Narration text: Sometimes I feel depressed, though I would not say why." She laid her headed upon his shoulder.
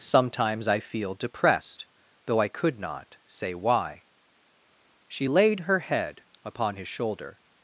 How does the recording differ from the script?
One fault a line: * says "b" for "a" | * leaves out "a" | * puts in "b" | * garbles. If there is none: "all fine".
* says "could" for "would"
* says "head" for "headed"